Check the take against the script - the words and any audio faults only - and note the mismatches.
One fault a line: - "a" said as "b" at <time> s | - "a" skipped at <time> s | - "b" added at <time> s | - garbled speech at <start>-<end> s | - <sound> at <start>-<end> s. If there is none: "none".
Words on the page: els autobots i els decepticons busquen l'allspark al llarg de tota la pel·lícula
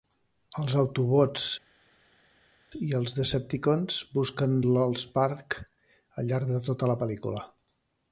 none